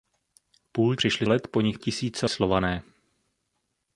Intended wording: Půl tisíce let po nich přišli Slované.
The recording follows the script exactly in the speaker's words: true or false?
false